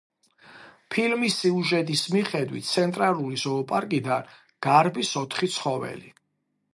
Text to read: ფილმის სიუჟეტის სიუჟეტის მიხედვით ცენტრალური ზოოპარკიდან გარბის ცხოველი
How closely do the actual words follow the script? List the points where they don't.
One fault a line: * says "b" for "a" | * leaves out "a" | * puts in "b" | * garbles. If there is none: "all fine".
* leaves out "სიუჟეტის"
* puts in "ოთხი"